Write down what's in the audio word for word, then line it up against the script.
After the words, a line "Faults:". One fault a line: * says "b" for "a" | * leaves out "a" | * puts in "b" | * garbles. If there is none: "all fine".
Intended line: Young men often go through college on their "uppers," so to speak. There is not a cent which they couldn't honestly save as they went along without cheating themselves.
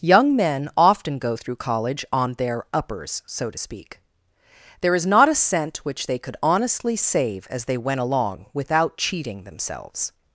Young men often go through college on their "uppers," so to speak. There is not a cent which they could honestly save as they went along without cheating themselves.
Faults:
* says "could" for "couldn't"